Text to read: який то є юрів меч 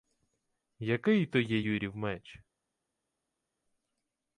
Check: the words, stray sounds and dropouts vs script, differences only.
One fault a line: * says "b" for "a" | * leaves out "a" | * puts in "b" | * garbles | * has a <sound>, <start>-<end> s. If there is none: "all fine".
all fine